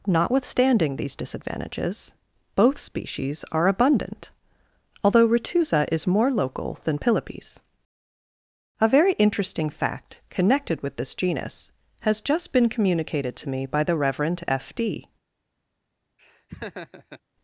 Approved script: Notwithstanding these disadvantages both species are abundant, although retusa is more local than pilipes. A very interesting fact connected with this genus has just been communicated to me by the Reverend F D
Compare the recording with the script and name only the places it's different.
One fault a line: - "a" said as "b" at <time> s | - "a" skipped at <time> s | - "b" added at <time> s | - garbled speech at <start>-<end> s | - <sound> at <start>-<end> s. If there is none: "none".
- laugh at 16.2-17.2 s